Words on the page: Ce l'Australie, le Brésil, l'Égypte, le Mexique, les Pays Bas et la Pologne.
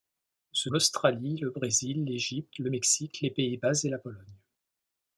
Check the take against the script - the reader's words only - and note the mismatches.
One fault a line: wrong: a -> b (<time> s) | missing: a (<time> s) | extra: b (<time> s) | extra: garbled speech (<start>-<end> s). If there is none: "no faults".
no faults